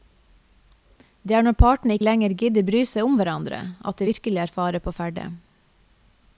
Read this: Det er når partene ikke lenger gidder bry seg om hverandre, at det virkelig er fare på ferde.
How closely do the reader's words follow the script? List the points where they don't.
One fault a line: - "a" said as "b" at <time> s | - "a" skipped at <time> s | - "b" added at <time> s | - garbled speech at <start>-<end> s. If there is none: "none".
- "ikke" skipped at 2.0 s